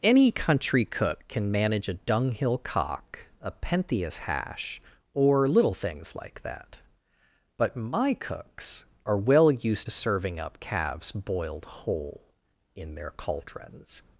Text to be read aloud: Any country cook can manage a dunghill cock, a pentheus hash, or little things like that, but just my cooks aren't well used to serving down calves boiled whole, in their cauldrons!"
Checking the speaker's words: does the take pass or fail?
fail